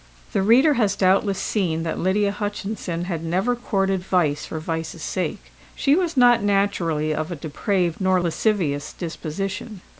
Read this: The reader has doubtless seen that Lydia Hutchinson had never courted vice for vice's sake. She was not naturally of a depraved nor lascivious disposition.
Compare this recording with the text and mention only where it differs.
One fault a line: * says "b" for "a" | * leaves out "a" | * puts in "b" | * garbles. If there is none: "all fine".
all fine